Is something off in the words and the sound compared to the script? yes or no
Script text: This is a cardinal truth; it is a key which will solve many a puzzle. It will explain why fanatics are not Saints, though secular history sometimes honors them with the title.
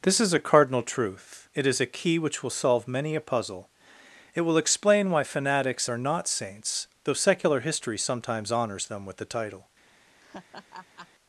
yes